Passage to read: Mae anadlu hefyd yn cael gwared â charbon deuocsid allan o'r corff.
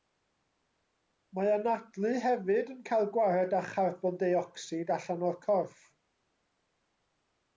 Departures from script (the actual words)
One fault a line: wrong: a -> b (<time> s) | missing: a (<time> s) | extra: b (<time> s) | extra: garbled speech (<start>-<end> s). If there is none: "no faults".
no faults